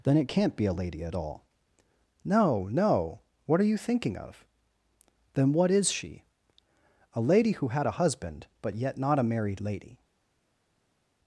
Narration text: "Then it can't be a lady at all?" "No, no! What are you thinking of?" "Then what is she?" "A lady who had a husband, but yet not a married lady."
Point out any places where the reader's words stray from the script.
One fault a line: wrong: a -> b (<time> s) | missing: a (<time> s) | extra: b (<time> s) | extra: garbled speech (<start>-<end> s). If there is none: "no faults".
no faults